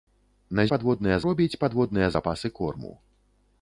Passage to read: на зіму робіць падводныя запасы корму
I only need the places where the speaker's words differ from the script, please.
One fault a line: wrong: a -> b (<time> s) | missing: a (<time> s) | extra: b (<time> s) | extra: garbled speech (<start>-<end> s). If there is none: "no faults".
wrong: зіму -> падводныя (0.7 s)